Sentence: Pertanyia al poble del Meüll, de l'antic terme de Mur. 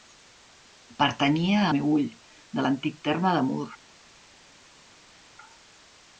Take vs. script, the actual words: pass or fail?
fail